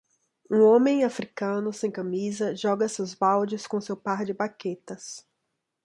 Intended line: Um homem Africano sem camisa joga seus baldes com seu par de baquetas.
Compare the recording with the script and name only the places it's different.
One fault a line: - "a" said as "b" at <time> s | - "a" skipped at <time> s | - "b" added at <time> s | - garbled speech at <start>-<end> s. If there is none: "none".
none